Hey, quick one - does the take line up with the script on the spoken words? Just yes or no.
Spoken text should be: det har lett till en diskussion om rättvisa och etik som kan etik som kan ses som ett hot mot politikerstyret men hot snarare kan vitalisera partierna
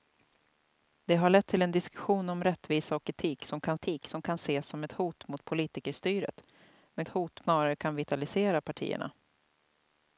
yes